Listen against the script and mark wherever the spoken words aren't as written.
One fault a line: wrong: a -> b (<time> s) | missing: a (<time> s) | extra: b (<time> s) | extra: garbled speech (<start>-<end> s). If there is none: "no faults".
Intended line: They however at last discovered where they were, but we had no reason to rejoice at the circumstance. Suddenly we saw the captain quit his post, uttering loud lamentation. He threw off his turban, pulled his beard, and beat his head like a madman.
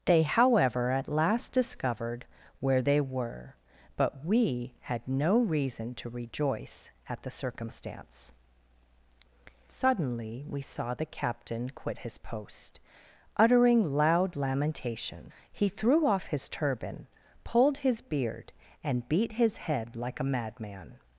no faults